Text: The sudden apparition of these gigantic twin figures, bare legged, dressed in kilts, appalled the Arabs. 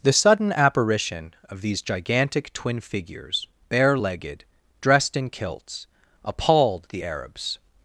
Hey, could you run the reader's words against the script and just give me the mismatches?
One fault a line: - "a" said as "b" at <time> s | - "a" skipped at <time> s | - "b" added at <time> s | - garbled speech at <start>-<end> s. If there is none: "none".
none